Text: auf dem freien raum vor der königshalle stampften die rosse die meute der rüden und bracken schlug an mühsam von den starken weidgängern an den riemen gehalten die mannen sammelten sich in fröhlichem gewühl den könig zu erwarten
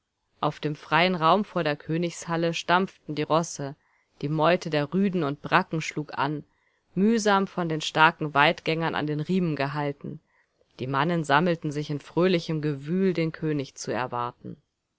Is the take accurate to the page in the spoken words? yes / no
yes